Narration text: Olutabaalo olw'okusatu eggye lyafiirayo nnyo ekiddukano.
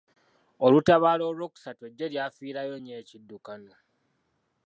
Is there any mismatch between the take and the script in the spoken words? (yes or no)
no